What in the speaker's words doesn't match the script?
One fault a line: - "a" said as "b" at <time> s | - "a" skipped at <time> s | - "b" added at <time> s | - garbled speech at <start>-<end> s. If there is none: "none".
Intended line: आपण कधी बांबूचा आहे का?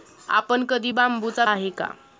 none